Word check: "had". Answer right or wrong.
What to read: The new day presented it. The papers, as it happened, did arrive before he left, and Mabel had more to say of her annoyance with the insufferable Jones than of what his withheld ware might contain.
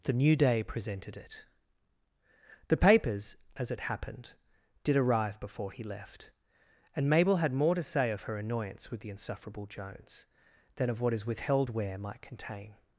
right